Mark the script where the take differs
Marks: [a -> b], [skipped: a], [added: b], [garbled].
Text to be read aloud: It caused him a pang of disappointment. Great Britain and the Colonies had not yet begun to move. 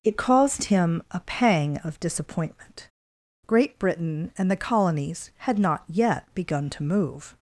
It caused him a pang of disappointment. Great Britain and the Colonies had not yet begun to move.